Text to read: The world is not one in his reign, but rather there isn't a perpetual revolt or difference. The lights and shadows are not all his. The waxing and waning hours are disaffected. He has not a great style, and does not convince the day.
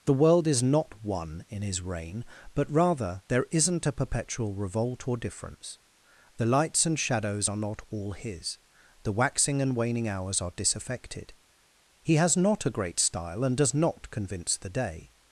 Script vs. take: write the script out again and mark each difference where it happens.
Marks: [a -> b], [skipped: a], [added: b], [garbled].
The world is not one in his reign, but rather there isn't a perpetual revolt or difference. The lights and shadows are not all his. The waxing and waning hours are disaffected. He has not a great style, and does not convince the day.